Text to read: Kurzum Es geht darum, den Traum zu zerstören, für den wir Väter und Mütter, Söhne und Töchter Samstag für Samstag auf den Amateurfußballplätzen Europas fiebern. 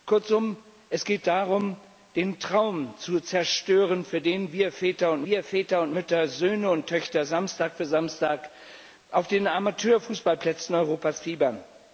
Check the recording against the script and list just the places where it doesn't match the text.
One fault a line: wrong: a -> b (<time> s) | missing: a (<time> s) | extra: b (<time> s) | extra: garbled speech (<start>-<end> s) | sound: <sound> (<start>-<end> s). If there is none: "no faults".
extra: wir Väter und (5.2 s)